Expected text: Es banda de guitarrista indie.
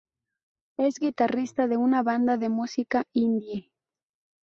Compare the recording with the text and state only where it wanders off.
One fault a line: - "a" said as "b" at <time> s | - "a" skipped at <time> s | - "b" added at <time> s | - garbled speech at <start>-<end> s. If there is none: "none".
- "guitarrista de una" added at 1.0 s
- "guitarrista" said as "música" at 2.5 s